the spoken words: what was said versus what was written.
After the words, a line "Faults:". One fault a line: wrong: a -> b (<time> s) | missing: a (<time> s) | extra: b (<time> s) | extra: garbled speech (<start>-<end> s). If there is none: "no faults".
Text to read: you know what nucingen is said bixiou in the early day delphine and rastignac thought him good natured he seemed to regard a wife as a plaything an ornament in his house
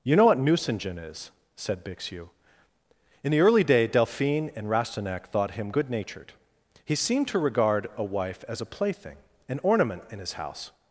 you know what nucingen is said bixiou in the early day delphine and rastignac thought him good natured he seemed to regard a wife as a plaything an ornament in his house
Faults:
no faults